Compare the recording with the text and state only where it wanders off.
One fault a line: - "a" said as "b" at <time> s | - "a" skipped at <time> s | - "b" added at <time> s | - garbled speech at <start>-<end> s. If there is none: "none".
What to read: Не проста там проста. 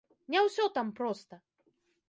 - "проста" said as "ўсё" at 0.5 s